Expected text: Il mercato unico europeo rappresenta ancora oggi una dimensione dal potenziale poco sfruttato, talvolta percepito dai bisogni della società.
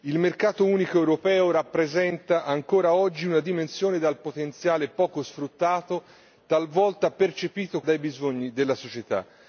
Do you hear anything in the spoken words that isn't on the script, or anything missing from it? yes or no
no